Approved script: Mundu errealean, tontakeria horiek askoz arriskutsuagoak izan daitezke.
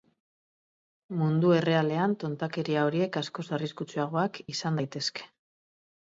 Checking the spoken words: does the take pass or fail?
pass